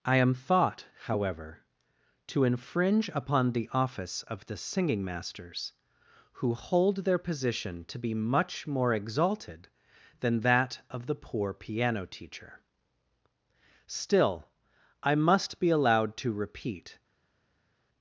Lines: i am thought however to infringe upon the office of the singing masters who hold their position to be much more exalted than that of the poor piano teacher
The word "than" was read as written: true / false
true